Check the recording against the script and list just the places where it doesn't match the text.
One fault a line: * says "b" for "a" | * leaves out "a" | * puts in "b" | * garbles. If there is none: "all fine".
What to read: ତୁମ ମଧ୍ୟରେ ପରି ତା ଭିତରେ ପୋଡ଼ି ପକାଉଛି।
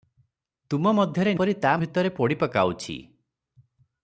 all fine